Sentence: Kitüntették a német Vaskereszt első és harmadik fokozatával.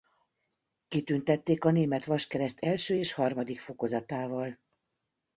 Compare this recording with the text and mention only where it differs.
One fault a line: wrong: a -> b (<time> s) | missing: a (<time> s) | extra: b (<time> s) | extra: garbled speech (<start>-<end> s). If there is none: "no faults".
no faults